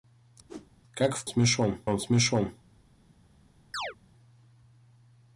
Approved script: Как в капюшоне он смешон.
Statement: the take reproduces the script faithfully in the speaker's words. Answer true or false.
false